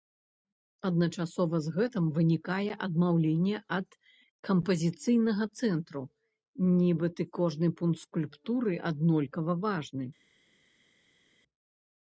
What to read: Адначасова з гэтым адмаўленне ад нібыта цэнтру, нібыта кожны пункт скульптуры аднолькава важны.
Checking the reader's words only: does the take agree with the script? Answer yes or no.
no